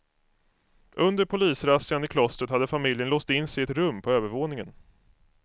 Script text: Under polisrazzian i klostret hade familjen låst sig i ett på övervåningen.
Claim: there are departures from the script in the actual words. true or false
true